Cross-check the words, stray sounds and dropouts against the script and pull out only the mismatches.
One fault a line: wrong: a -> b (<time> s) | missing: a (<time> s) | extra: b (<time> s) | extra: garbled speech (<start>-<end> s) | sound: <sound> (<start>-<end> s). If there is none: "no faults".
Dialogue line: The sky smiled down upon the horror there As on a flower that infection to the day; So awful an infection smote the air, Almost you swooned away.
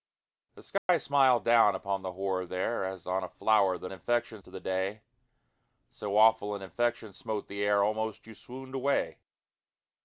sound: dropout (0.8-0.9 s)